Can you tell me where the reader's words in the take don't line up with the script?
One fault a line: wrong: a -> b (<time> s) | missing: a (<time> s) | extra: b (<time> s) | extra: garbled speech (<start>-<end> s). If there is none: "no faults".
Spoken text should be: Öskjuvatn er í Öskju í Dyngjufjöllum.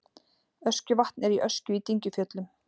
no faults